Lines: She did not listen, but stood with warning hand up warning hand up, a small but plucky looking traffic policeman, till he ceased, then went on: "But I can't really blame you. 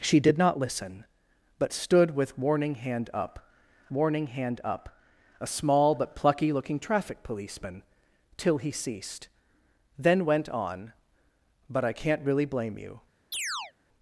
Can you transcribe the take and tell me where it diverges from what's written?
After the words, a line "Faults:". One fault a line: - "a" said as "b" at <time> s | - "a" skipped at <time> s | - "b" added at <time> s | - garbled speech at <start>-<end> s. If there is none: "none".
She did not listen, but stood with warning hand up warning hand up, a small but plucky looking traffic policeman, till he ceased, then went on: "But I can't really blame you.
Faults:
none